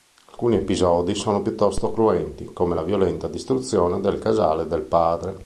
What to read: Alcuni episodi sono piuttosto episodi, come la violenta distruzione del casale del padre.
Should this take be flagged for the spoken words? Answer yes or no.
yes